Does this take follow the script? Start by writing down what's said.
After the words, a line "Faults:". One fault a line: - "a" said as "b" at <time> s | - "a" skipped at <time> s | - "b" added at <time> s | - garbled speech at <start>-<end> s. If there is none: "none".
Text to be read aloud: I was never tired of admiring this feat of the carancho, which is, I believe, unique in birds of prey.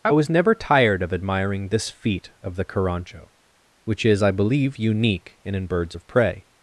I was never tired of admiring this feat of the carancho, which is, I believe, unique in in birds of prey.
Faults:
- "in" added at 5.5 s